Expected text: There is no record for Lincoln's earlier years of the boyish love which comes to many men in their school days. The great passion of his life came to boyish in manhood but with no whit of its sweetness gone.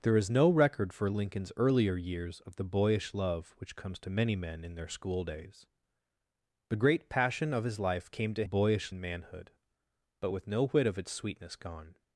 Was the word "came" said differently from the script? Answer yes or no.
no